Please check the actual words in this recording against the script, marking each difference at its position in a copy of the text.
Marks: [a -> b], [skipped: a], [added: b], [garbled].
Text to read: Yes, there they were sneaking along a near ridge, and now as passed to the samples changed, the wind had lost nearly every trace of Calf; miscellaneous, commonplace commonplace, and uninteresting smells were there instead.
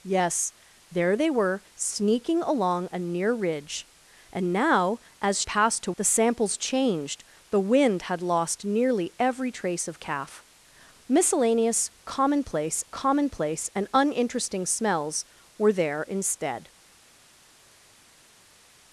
Yes, there they were sneaking along a near ridge, and now as passed to the samples changed, the wind had lost nearly every trace of Calf; miscellaneous, commonplace commonplace, and uninteresting smells were there instead.